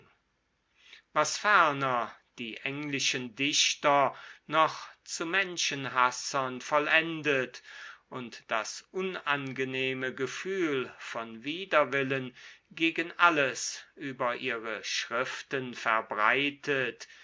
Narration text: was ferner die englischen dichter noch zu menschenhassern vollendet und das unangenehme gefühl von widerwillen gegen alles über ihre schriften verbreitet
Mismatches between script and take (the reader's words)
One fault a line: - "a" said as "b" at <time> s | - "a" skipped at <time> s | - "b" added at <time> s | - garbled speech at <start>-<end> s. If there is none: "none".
none